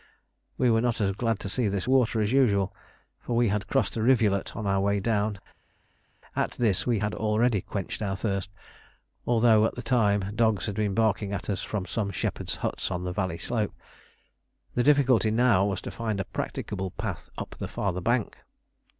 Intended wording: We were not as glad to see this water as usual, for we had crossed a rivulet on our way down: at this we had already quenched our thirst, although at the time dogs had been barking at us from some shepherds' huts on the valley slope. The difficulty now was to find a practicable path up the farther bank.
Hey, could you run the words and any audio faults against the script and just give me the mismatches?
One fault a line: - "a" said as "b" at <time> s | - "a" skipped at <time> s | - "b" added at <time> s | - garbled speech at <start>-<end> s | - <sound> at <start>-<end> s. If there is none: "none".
none